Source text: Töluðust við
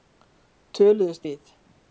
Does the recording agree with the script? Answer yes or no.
yes